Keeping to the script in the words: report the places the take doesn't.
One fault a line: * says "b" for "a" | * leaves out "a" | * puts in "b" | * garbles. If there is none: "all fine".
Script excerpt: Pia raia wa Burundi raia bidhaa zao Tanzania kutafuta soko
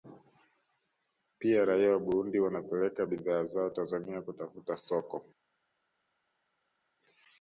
* says "wanapeleka" for "raia"